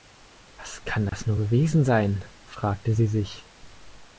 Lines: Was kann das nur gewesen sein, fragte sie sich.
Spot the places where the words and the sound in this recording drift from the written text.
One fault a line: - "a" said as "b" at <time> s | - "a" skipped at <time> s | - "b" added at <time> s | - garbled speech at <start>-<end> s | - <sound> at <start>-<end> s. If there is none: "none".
- dropout at 1.1-1.1 s